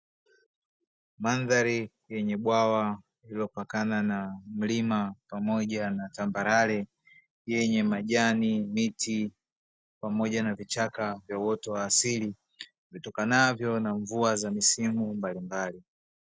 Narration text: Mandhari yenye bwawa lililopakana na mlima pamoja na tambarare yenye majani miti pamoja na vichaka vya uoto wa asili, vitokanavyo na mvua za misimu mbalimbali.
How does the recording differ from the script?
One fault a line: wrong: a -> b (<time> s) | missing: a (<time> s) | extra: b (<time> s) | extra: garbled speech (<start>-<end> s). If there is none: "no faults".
no faults